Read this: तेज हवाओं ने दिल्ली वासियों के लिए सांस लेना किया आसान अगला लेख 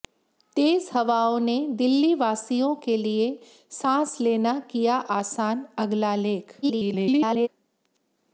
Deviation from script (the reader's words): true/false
true